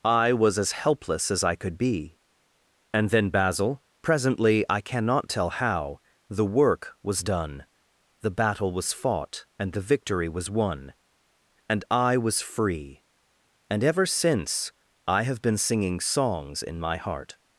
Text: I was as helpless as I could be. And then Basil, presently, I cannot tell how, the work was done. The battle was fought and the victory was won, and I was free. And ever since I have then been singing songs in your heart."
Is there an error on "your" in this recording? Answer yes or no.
yes